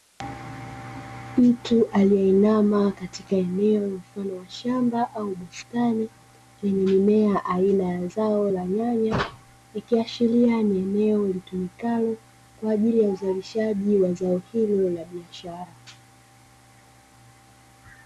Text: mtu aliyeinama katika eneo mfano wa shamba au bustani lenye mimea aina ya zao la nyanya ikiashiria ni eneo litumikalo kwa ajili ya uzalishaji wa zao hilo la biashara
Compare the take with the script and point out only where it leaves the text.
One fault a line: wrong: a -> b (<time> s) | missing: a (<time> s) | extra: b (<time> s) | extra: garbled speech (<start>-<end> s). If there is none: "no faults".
no faults